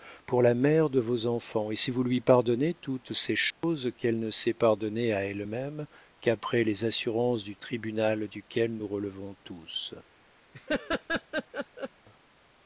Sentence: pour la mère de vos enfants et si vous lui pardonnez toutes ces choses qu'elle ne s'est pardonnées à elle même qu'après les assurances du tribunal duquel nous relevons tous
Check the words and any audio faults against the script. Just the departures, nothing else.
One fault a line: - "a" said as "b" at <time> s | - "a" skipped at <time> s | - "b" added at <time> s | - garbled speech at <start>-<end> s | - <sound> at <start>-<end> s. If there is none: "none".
- dropout at 3.5-3.6 s
- laugh at 10.5-11.9 s